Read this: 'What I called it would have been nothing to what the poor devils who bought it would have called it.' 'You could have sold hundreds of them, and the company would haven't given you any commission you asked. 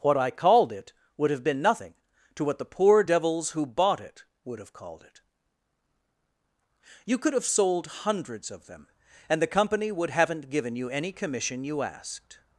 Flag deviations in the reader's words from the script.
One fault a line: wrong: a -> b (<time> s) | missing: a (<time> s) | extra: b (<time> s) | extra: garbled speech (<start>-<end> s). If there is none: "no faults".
no faults